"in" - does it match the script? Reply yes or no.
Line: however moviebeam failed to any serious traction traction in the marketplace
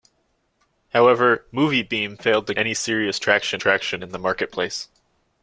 yes